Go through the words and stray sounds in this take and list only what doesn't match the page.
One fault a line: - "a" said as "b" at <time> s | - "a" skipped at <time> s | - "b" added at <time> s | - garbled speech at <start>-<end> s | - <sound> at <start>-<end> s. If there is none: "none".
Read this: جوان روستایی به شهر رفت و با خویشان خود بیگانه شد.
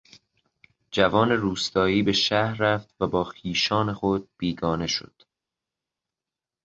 none